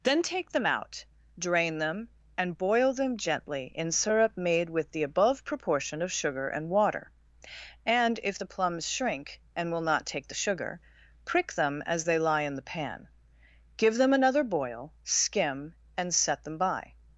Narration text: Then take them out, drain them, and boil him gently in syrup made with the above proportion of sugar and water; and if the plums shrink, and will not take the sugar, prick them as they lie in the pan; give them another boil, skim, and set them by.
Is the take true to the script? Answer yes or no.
no